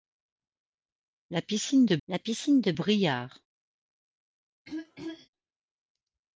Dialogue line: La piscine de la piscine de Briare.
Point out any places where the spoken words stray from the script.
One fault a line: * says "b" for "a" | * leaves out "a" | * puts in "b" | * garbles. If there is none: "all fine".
all fine